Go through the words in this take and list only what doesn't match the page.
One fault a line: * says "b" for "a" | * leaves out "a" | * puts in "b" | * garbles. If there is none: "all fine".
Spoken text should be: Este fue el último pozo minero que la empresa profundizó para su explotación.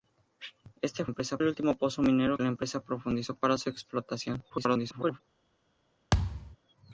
* says "empresa" for "fue"
* leaves out "que"
* garbles